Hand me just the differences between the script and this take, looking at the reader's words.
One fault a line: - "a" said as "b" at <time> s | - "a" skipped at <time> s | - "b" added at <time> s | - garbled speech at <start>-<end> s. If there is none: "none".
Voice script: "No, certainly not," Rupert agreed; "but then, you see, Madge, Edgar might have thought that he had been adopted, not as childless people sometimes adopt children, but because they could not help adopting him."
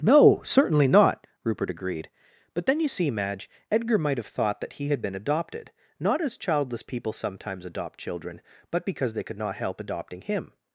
none